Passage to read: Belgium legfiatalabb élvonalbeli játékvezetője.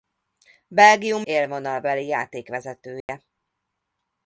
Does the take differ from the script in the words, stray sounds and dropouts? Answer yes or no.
yes